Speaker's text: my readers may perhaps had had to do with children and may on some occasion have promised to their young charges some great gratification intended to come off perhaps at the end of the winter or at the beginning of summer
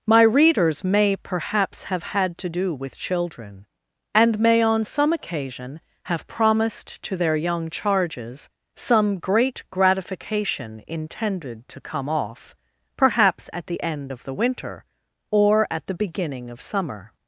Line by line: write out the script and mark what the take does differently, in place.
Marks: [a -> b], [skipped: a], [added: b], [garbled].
my readers may perhaps [had -> have] had to do with children and may on some occasion have promised to their young charges some great gratification intended to come off perhaps at the end of the winter or at the beginning of summer